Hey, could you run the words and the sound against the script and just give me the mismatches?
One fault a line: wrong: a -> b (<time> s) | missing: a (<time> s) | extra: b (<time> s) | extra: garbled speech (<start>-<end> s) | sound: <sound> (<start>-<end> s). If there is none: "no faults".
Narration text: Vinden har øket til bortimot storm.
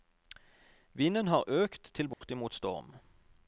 sound: dropout (2.1-2.2 s)